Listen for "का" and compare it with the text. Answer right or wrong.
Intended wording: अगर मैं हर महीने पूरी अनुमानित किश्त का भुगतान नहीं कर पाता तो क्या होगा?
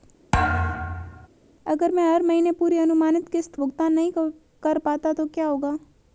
wrong